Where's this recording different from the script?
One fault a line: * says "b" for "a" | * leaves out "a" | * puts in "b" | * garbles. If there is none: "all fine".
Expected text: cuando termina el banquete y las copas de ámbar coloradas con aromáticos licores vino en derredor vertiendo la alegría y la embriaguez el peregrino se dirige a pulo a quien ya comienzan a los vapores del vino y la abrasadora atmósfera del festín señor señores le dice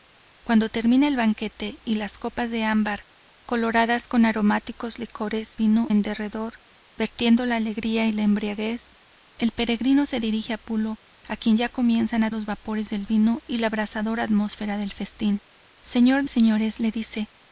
all fine